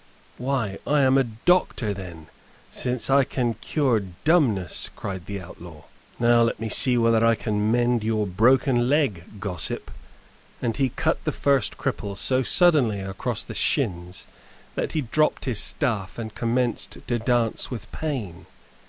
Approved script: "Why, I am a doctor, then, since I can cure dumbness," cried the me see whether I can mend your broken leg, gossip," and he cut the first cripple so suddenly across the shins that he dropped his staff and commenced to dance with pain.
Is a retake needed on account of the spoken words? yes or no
yes